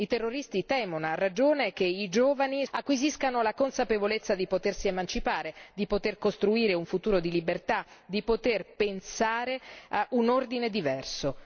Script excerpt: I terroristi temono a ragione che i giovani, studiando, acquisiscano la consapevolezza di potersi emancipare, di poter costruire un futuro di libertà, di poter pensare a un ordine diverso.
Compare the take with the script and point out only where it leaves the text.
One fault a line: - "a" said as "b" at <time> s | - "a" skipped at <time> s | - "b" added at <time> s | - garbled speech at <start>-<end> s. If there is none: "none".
- "studiando" skipped at 2.6 s